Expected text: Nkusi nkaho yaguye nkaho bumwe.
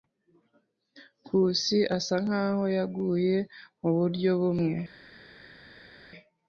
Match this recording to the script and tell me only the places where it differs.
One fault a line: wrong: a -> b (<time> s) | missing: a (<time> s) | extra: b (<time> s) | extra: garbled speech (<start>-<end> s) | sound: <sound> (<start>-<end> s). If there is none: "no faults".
extra: asa (2.0 s)
wrong: nkaho -> muburyo (3.8 s)